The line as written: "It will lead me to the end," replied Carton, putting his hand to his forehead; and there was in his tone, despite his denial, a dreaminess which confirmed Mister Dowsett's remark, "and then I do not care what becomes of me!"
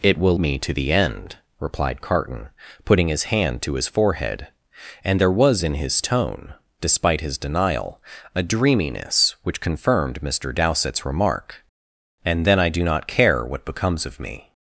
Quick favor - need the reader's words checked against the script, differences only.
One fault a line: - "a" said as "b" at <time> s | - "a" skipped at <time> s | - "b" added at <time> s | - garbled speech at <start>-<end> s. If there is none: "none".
- "lead" skipped at 0.4 s